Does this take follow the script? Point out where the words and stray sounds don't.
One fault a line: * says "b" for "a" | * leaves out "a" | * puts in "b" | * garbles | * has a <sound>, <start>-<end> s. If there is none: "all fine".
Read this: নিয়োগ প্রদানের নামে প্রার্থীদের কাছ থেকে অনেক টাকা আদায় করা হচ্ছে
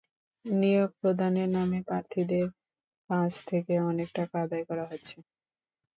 all fine